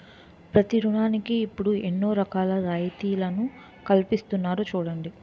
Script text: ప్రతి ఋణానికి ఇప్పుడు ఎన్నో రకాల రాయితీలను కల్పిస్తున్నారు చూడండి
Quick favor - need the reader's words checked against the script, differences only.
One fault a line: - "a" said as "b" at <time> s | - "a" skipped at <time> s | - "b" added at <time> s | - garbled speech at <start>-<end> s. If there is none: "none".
none